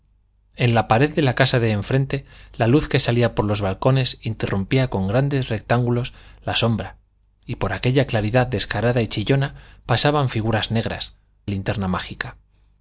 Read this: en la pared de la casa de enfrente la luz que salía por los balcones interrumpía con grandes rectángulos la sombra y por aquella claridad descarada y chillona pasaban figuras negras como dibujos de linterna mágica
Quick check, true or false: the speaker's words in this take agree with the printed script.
false